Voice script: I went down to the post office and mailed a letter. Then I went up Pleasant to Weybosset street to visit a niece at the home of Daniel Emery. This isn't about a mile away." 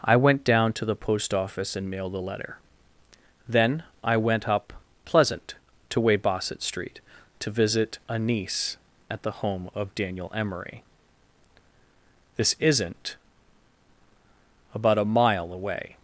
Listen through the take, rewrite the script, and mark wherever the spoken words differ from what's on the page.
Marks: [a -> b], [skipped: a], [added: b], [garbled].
I went down to the post office and mailed a letter. Then I went up Pleasant to Weybosset street to visit a niece at the home of Daniel Emery. This isn't about a mile away."